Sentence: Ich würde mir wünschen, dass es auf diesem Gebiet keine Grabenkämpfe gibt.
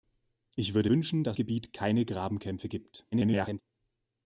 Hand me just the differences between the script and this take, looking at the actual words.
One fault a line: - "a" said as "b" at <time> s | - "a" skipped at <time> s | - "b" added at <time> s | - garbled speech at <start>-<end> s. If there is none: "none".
- "mir" skipped at 0.9 s
- "es auf diesem" skipped at 1.4 s
- garbled speech at 3.1-3.6 s